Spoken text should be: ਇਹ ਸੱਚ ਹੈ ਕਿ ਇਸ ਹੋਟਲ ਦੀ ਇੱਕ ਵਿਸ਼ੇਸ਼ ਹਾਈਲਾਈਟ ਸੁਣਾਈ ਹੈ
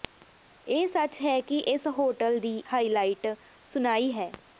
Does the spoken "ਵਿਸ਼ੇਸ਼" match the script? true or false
false